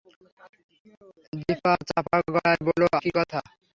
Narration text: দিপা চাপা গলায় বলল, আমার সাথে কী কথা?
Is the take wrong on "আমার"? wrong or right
wrong